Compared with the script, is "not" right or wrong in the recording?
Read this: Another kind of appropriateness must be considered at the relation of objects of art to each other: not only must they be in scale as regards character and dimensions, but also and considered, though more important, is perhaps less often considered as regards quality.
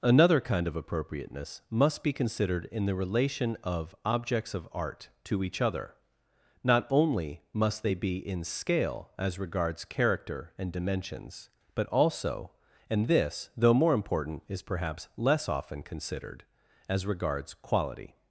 right